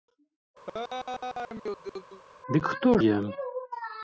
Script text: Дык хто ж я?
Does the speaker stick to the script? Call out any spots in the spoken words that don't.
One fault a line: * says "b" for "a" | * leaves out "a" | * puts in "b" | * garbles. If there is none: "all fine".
* leaves out "ж"